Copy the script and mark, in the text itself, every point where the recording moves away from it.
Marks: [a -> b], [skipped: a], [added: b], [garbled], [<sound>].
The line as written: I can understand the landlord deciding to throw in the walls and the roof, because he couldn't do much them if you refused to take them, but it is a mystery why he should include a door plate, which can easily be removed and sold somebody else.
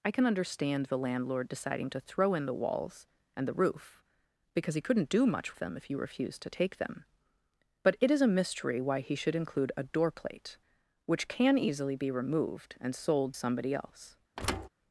I can understand the landlord deciding to throw in the walls and the roof, because he couldn't do much them if you refused to take them, but it is a mystery why he should include a door plate, which can easily be removed and sold somebody else. [thud]